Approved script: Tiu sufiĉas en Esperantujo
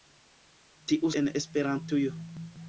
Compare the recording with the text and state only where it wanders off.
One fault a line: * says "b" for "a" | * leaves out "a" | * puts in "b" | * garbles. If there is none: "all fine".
* leaves out "sufiĉas"